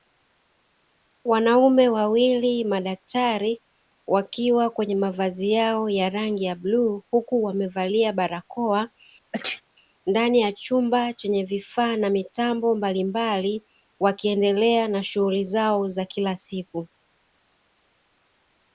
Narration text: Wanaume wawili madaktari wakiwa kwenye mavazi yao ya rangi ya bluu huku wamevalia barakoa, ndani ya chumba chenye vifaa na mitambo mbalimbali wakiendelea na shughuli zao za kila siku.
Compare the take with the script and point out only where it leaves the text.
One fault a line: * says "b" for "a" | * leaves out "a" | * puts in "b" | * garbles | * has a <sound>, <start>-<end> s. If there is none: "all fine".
* has a sneeze, 9.3-9.6 s